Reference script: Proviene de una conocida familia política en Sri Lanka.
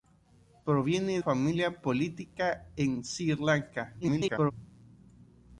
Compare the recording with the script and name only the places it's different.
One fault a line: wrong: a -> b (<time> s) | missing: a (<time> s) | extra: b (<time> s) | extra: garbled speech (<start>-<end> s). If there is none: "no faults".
missing: de una conocida (1.2 s)
extra: garbled speech (4.0-4.5 s)